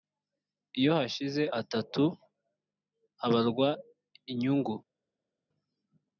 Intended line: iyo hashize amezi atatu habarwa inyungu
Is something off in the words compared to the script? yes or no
yes